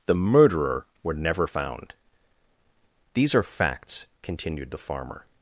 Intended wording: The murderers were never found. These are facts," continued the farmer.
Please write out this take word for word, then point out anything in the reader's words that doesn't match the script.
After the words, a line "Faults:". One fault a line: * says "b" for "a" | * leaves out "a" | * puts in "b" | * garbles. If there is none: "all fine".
The murderer were never found. These are facts," continued the farmer.
Faults:
* says "murderer" for "murderers"